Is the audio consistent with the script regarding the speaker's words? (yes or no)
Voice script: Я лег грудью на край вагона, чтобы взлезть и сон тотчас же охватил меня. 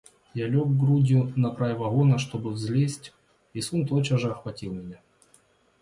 yes